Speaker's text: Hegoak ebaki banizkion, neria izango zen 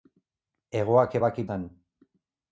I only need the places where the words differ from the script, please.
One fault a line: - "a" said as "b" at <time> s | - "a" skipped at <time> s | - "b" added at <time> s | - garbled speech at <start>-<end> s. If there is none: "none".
- "banizkion neria izango" skipped at 1.5 s